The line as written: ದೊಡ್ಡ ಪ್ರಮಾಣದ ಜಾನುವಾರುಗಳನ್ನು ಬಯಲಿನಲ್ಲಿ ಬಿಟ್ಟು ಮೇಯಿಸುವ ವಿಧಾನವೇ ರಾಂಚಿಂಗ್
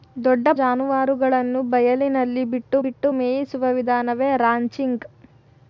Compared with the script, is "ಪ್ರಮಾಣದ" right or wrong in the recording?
wrong